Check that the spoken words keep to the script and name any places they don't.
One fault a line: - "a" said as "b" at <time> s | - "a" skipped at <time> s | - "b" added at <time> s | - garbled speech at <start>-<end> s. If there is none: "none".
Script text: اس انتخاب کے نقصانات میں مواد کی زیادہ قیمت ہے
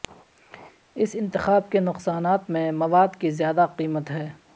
none